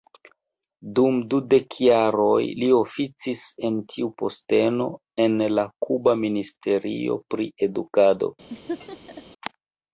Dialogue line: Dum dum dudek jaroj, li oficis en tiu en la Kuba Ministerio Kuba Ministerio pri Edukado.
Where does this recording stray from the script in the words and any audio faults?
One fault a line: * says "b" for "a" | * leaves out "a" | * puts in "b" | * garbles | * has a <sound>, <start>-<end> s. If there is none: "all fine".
* leaves out "dum"
* puts in "posteno"
* leaves out "Kuba Ministerio"
* has a laugh, 8.5-9.2 s